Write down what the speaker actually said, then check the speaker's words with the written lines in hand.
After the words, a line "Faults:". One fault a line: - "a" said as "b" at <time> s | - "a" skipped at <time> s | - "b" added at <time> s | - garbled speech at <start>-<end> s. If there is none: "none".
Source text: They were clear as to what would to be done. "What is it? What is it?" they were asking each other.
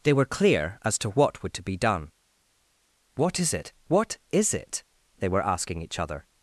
They were clear as to what would to be done. "What is it? What is it?" they were asking each other.
Faults:
none